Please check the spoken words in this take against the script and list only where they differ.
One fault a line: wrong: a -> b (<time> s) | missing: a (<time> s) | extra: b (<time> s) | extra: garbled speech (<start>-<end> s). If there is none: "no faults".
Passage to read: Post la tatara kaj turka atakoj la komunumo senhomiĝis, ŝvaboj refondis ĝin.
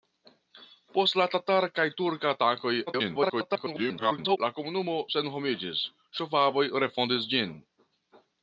extra: garbled speech (2.9-4.4 s)